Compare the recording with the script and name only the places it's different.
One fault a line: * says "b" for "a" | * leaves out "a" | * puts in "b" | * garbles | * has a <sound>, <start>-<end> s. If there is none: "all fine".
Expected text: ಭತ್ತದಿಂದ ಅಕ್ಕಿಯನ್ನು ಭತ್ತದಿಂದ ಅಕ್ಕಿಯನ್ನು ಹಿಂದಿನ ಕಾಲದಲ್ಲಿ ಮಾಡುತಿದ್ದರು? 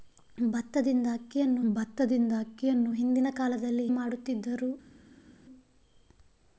all fine